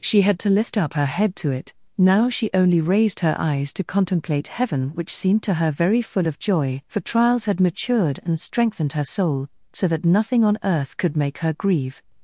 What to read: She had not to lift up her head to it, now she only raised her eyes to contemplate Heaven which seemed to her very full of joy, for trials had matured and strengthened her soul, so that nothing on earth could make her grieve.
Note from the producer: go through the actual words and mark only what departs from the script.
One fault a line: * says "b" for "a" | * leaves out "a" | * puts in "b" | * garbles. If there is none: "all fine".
* leaves out "not"